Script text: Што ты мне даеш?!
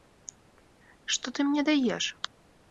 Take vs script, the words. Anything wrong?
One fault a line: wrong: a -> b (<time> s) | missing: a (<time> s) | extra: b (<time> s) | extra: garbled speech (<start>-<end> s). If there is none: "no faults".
no faults